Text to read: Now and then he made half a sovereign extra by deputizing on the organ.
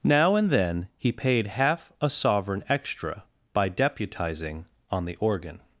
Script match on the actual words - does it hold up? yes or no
no